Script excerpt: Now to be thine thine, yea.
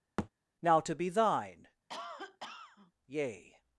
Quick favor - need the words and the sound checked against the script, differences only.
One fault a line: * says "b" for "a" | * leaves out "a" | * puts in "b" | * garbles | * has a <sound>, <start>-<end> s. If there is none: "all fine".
* has a thud, 0.2-0.3 s
* leaves out "thine"
* has a cough, 1.9-2.9 s